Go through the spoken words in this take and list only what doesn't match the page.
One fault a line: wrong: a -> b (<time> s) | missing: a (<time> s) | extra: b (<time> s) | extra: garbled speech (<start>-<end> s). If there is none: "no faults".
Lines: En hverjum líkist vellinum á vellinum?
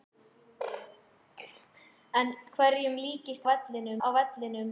no faults